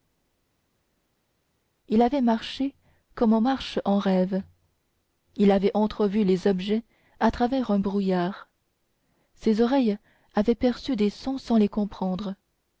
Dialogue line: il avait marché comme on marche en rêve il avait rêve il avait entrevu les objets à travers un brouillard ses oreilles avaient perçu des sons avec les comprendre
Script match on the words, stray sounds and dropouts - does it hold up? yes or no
no